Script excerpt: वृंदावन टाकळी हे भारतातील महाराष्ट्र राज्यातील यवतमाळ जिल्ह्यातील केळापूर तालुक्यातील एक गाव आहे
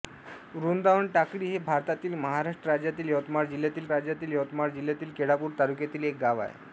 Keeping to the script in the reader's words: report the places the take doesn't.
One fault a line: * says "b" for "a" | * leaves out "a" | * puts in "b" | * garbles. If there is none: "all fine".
* puts in "राज्यातील यवतमाळ जिल्ह्यातील"